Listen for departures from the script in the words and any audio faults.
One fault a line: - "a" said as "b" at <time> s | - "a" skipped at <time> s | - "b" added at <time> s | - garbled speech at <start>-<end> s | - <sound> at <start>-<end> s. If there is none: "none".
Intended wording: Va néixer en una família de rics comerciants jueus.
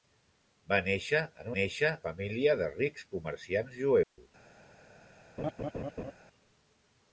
- "una" said as "néixer" at 1.6 s
- dropout at 4.0-4.2 s
- laugh at 5.4-6.1 s